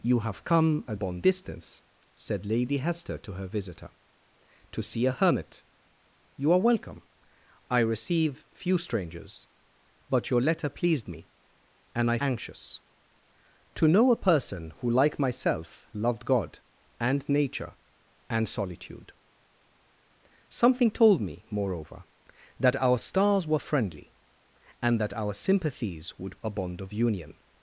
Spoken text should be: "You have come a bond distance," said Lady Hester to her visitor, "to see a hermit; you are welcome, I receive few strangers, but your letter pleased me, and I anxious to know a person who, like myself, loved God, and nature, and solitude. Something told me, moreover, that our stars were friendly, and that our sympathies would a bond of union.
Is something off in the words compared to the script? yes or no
no